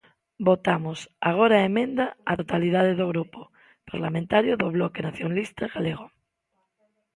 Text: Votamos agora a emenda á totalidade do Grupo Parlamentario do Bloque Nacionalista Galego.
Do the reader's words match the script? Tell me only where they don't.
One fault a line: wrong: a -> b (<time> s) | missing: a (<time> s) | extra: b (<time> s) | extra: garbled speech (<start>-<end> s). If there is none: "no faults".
no faults